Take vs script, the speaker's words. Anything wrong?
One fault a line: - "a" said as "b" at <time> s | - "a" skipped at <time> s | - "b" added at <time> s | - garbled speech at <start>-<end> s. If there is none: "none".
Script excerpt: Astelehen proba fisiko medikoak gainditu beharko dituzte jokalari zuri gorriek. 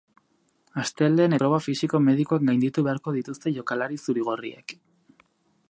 none